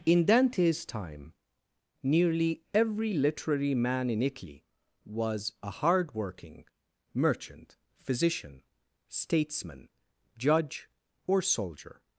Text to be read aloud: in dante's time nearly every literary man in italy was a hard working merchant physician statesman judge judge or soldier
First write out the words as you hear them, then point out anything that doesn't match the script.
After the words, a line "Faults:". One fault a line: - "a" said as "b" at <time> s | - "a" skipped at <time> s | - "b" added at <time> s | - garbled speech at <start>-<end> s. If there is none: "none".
in dante's time nearly every literary man in italy was a hard working merchant physician statesman judge or soldier
Faults:
- "judge" skipped at 10.9 s